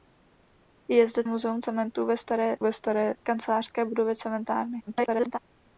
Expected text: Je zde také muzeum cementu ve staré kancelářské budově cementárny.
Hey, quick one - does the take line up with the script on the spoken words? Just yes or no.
no